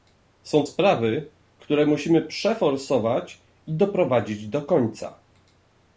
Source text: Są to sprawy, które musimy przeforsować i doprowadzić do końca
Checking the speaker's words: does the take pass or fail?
fail